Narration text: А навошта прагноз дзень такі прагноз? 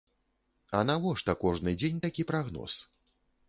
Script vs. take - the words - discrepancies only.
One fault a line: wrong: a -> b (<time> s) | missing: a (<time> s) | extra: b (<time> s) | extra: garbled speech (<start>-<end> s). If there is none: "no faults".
wrong: прагноз -> кожны (1.4 s)